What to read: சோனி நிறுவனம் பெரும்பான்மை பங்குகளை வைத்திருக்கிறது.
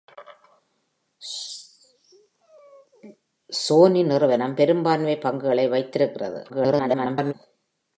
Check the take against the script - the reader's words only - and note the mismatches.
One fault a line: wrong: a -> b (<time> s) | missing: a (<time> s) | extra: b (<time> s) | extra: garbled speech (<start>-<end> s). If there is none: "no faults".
extra: garbled speech (6.5-7.3 s)